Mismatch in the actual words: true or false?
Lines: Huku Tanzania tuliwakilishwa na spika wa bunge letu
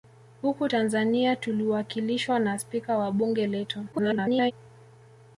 true